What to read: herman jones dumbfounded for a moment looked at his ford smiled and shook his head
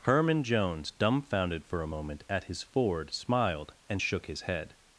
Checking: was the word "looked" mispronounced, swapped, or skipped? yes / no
yes